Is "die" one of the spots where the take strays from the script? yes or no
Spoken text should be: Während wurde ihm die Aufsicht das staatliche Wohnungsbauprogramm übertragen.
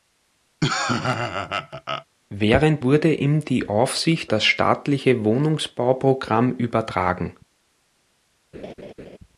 no